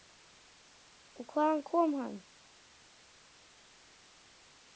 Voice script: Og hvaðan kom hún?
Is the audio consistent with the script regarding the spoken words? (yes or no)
no